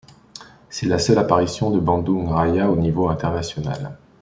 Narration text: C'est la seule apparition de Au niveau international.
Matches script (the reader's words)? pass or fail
fail